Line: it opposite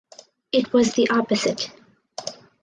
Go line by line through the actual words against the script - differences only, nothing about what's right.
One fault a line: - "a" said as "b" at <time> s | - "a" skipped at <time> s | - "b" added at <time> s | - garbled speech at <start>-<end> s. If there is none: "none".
- "was the" added at 0.7 s